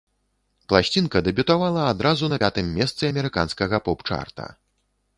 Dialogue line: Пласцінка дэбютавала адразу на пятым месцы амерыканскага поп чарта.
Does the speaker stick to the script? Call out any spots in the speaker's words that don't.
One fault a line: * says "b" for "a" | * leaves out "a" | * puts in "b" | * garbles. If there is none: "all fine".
all fine